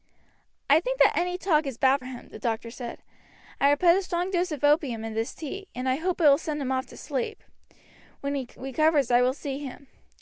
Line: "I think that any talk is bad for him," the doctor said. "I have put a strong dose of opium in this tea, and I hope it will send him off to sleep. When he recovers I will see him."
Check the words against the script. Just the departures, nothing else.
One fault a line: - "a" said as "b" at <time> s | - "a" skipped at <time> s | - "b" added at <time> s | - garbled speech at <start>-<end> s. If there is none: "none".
- "for" skipped at 2.0 s